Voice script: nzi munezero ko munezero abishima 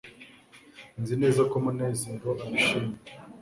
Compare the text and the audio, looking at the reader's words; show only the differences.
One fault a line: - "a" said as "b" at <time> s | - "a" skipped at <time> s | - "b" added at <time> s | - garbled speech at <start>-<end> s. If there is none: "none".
- "munezero" said as "neza" at 1.2 s